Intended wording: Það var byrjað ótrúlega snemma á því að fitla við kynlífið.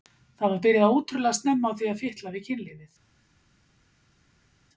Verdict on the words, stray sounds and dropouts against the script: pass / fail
pass